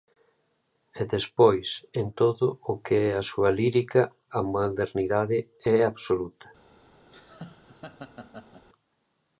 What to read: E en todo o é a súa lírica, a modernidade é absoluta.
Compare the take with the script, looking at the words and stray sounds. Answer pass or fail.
fail